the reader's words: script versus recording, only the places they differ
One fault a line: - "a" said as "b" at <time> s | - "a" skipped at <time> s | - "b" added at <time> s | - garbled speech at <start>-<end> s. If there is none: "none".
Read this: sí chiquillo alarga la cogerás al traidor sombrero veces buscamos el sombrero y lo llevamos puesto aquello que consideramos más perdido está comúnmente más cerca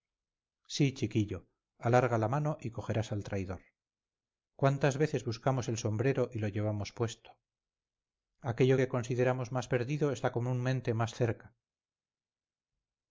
- "mano y" added at 2.3 s
- "sombrero" said as "cuántas" at 4.5 s